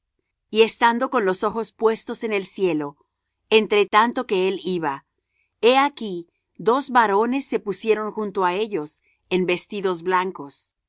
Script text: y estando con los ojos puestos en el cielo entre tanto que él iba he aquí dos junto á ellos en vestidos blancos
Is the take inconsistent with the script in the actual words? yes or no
yes